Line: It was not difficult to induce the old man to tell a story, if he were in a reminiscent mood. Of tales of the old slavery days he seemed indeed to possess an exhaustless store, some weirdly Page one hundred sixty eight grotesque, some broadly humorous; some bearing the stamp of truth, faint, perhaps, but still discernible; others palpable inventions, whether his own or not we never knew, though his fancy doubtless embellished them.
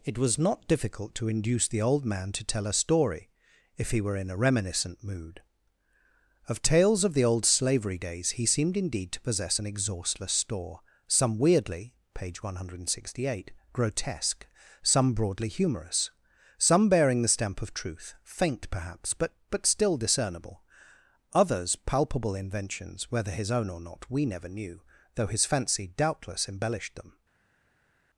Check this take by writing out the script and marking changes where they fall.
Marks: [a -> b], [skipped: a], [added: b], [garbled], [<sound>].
It was not difficult to induce the old man to tell a story, if he were in a reminiscent mood. Of tales of the old slavery days he seemed indeed to possess an exhaustless store, some weirdly Page one hundred sixty eight grotesque, some broadly humorous; some bearing the stamp of truth, faint, perhaps, but [added: but] still discernible; others palpable inventions, whether his own or not we never knew, though his fancy doubtless embellished them.